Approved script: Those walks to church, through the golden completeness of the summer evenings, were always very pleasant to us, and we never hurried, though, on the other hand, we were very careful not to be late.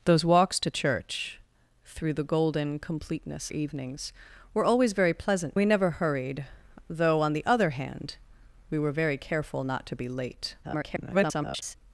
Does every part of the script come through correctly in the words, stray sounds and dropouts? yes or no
no